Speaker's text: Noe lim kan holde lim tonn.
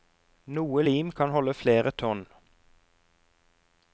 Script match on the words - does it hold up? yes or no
no